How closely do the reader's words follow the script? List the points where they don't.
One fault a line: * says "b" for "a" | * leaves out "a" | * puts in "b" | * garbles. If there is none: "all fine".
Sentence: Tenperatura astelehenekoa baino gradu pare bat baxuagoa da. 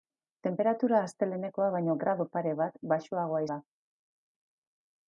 all fine